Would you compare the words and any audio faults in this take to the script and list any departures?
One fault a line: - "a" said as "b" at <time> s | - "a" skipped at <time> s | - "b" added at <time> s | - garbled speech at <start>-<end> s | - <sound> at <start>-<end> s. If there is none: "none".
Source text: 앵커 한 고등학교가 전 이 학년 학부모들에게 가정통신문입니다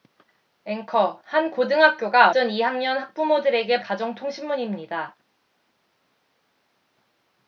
none